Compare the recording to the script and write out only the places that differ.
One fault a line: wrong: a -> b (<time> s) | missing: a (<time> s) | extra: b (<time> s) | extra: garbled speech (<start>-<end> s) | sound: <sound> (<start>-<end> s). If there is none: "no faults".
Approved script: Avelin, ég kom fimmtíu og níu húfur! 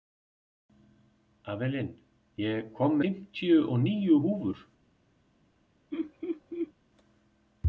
sound: laugh (5.9-6.7 s)